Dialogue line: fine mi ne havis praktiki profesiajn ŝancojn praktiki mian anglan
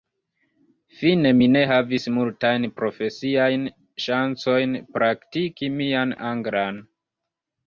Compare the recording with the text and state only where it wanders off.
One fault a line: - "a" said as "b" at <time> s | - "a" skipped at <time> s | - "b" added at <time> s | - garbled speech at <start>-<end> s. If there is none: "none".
- "praktiki" said as "multajn" at 2.2 s